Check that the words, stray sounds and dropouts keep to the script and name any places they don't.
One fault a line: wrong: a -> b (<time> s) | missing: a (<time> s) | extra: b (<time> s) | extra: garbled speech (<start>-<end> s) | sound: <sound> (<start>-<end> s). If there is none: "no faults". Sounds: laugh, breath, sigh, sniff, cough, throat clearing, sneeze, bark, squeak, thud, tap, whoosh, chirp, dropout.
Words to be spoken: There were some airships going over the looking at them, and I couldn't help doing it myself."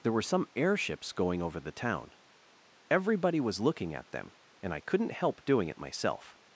extra: town Everybody was (1.7 s)